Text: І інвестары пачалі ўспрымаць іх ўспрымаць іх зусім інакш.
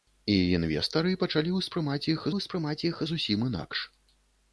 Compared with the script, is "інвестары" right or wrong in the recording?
right